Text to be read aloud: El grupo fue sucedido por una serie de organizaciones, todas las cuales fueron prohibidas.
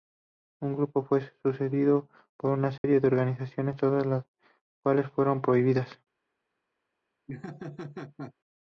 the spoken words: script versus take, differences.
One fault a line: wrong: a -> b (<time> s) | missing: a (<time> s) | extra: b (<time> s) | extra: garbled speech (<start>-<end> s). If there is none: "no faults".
no faults